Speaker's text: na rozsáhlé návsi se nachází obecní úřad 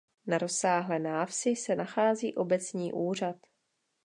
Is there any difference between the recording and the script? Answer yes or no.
no